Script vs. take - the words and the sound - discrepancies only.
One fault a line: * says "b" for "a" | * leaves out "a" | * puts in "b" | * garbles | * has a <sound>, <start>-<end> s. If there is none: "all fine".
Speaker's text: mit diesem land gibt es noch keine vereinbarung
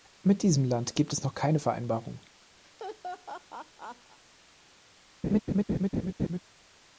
* has a laugh, 2.6-4.2 s
* has a laugh, 5.2-6.4 s